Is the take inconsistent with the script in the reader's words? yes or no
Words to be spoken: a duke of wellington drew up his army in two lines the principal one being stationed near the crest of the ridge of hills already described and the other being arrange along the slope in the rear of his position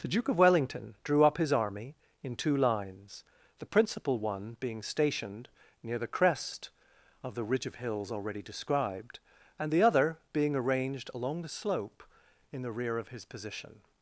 yes